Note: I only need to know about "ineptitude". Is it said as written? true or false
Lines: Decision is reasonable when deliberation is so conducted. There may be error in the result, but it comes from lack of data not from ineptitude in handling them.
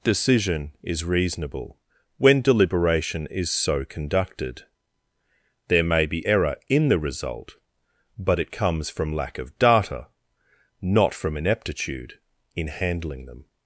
true